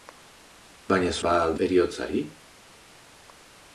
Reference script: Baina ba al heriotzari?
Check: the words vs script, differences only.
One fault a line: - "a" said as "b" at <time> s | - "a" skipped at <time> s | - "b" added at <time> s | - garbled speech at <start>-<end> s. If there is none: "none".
none